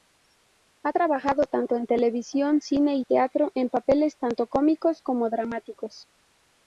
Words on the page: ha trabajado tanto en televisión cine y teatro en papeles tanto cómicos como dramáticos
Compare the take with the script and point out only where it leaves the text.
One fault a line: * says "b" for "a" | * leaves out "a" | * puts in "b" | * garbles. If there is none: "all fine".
all fine